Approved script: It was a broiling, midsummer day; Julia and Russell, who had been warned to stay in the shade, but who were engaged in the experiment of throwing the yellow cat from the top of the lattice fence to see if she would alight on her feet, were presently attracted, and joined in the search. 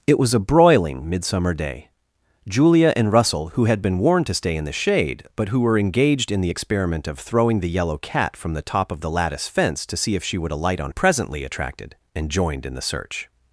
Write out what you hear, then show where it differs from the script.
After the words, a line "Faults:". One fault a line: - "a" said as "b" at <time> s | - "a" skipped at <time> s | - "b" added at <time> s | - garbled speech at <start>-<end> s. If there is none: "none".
It was a broiling, midsummer day; Julia and Russell, who had been warned to stay in the shade, but who were engaged in the experiment of throwing the yellow cat from the top of the lattice fence to see if she would alight on presently attracted, and joined in the search.
Faults:
- "her feet were" skipped at 10.9 s